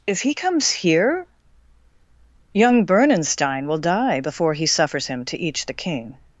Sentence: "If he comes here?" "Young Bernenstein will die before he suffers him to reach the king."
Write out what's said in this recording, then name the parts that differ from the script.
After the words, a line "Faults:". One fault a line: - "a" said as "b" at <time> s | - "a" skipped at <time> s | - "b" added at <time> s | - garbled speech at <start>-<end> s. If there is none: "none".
"If he comes here?" "Young Bernenstein will die before he suffers him to each the king."
Faults:
- "reach" said as "each" at 5.4 s